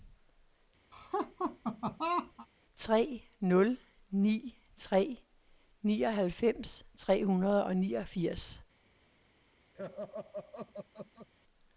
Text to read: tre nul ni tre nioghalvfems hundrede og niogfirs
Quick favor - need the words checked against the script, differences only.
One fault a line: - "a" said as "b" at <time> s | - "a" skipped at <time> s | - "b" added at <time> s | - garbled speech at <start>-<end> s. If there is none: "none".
- "tre" added at 7.0 s